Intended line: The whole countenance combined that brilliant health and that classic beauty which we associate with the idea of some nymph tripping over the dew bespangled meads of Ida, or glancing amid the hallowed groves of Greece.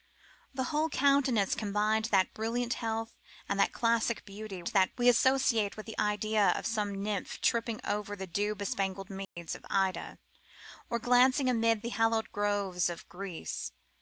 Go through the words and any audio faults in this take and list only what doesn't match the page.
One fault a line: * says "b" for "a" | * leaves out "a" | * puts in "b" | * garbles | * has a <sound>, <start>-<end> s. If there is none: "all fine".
* says "that" for "which"
* has a dropout, 9.2-9.4 s